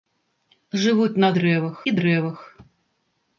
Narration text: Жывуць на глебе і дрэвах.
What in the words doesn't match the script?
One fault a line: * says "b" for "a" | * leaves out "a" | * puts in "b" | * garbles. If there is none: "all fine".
* says "дрэвах" for "глебе"